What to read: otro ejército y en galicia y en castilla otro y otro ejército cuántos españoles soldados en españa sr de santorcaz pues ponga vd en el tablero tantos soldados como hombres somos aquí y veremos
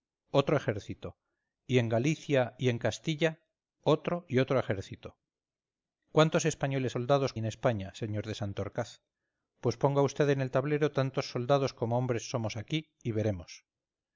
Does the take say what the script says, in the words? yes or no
yes